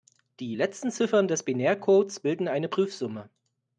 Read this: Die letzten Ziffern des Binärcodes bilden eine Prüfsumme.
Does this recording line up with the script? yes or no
yes